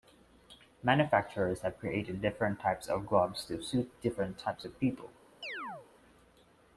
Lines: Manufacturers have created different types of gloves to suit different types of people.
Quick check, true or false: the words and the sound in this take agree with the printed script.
false